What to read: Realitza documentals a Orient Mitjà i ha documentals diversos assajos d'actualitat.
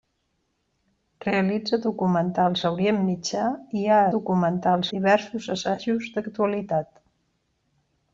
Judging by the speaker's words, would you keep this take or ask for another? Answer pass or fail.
pass